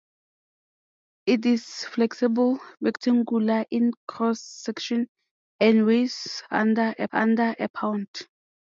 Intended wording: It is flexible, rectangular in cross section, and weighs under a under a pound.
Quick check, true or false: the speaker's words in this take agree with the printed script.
true